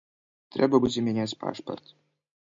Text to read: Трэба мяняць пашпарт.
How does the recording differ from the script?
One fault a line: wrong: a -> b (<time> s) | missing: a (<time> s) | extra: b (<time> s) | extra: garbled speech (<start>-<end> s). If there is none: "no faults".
extra: будзе (0.8 s)